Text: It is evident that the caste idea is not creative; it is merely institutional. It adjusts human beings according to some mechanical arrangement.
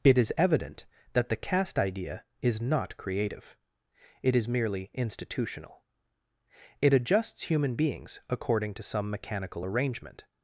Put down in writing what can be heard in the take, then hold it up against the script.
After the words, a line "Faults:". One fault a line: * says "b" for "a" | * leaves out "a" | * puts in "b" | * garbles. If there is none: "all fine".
It is evident that the caste idea is not creative; it is merely institutional. It adjusts human beings according to some mechanical arrangement.
Faults:
all fine